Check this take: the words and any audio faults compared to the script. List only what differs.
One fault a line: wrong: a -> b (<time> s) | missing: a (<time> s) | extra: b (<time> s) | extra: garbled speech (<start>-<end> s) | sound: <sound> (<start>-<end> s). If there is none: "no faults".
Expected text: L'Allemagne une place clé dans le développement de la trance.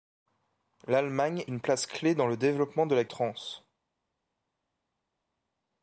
no faults